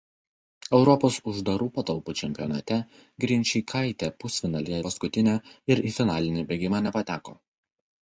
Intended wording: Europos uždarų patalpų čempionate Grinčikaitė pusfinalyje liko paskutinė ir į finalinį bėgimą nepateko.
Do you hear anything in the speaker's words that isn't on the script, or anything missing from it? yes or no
yes